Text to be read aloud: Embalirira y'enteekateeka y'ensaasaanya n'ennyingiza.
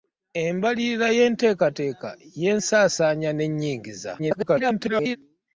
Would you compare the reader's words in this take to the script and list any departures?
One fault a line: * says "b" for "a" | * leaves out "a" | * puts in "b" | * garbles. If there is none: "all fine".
* garbles